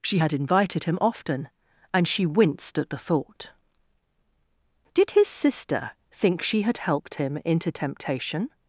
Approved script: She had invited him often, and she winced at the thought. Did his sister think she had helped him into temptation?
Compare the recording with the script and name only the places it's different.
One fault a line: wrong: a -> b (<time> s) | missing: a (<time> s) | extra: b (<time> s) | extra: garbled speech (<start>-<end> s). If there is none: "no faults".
no faults